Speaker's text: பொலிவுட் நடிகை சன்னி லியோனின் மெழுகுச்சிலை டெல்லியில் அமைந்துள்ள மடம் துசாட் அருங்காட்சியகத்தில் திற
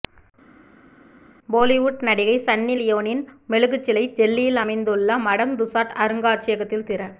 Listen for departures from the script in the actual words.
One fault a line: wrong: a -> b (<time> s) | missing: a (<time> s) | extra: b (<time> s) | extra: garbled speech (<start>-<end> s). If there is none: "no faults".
no faults